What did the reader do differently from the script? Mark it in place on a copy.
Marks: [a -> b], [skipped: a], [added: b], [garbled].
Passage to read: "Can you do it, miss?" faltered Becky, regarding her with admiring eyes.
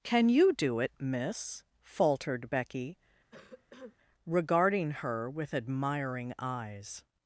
"Can you do it, miss?" faltered Becky, regarding her with admiring eyes.